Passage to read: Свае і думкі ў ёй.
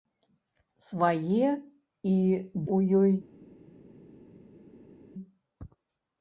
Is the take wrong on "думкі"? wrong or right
wrong